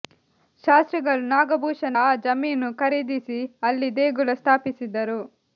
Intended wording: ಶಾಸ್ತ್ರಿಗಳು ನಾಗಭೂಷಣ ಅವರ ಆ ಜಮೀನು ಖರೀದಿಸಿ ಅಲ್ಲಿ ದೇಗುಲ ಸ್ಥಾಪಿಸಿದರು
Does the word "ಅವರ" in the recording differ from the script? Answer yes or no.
yes